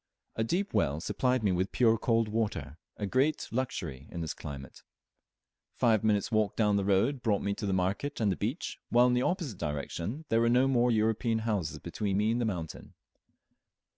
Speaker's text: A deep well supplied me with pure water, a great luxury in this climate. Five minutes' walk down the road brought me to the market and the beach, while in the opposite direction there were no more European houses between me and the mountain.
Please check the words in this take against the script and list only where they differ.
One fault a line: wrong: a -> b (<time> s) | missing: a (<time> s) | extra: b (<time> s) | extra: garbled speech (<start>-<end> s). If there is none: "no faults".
extra: cold (1.9 s)